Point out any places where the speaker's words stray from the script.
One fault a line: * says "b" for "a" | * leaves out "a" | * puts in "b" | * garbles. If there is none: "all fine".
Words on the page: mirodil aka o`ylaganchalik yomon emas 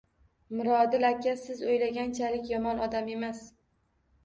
* puts in "siz"
* puts in "odam"